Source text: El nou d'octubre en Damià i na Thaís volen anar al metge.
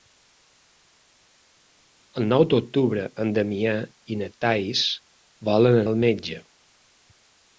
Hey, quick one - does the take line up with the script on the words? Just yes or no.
no